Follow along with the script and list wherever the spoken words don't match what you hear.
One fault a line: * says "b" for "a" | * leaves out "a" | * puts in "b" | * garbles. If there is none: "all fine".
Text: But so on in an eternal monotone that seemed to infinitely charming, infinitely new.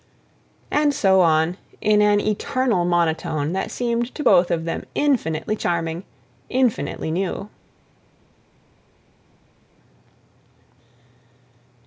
* says "And" for "But"
* puts in "both of them"